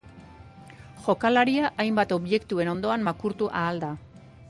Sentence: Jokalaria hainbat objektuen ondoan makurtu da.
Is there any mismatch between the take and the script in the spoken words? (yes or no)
yes